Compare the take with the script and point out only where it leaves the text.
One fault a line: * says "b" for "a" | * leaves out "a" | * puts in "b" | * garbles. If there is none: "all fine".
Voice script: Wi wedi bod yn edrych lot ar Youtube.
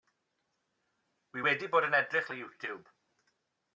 * leaves out "lot"